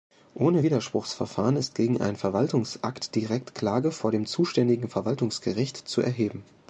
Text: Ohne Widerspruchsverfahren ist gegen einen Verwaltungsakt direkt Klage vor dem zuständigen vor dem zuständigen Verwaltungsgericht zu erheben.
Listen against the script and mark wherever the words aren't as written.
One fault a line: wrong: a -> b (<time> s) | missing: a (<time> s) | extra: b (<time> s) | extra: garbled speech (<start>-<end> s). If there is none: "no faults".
missing: vor dem zuständigen (4.9 s)